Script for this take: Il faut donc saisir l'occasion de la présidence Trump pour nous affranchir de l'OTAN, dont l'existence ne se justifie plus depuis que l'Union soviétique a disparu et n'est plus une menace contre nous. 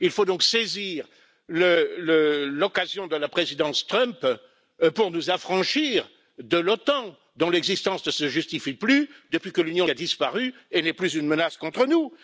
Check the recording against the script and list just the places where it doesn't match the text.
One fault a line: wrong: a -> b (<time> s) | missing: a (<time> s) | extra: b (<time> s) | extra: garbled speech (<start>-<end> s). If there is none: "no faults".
missing: soviétique (9.9 s)